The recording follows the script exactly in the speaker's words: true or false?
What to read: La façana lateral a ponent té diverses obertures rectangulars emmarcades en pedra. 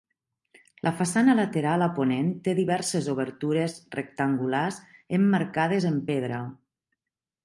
true